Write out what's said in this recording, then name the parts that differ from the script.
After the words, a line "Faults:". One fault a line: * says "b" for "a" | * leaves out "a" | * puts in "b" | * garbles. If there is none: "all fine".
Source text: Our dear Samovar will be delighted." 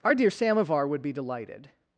Our dear Samovar would be delighted."
Faults:
* says "would" for "will"